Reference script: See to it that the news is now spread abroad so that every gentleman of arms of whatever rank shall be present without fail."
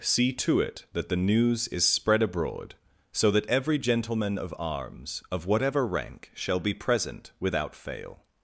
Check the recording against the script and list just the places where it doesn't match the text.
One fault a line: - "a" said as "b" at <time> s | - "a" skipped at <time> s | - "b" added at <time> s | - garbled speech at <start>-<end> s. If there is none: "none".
- "now" skipped at 1.9 s